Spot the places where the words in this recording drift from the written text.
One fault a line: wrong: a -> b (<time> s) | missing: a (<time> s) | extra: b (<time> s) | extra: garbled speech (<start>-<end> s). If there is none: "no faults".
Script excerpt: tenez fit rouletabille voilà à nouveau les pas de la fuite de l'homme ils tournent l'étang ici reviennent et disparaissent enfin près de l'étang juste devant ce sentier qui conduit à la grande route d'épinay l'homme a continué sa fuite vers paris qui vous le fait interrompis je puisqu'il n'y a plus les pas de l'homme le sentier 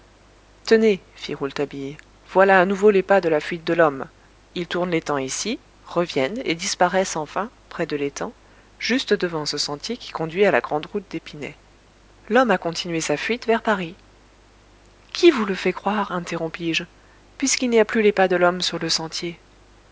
extra: croire (15.7 s)
extra: sur (18.6 s)